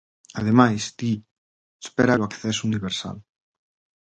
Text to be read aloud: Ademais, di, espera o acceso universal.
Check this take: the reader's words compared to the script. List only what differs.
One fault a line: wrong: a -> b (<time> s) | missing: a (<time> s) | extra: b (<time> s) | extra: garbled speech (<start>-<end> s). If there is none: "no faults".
no faults